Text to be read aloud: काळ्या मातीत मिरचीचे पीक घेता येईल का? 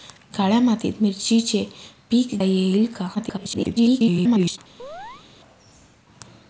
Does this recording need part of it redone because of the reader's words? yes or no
yes